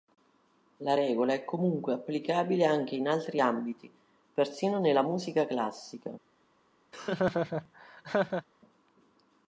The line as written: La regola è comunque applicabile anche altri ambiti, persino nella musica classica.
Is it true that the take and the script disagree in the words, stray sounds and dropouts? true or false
true